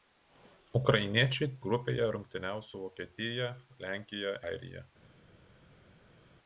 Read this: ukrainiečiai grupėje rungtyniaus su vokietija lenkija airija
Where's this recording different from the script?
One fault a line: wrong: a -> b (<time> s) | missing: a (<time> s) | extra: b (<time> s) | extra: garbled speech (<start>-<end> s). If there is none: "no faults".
no faults